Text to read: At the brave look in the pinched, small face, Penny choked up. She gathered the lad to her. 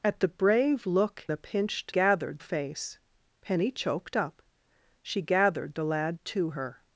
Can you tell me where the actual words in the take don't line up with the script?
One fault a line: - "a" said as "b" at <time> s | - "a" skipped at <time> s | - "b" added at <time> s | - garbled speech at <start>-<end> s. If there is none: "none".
- "in" skipped at 1.3 s
- "small" said as "gathered" at 1.9 s